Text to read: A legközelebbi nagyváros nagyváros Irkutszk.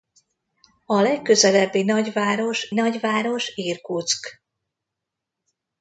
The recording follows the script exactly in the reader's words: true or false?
true